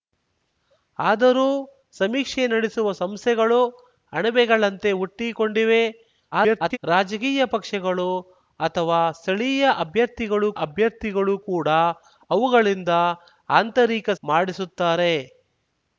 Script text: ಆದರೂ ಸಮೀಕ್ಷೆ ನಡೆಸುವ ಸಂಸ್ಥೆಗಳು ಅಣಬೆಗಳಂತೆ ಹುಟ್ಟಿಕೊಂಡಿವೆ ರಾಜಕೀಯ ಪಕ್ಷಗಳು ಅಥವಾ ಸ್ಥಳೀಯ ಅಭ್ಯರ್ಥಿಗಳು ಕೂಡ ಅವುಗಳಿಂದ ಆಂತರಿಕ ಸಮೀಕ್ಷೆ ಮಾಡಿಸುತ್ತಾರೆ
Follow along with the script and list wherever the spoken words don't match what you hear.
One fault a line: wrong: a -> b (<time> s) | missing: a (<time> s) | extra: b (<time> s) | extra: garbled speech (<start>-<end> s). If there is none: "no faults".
extra: garbled speech (6.3-6.8 s)
extra: ಅಭ್ಯರ್ಥಿಗಳು (10.6 s)
missing: ಸಮೀಕ್ಷೆ (14.1 s)